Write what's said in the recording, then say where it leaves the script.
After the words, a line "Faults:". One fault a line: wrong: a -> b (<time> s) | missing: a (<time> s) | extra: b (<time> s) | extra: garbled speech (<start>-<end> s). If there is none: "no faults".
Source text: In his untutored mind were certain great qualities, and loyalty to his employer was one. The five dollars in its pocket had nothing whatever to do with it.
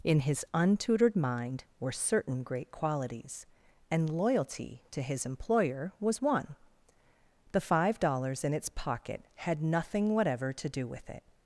In his untutored mind were certain great qualities, and loyalty to his employer was one. The five dollars in its pocket had nothing whatever to do with it.
Faults:
no faults